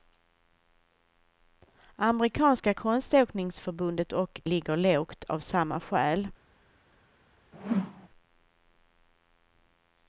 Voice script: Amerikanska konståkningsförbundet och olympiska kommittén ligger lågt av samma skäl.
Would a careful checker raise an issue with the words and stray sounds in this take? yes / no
yes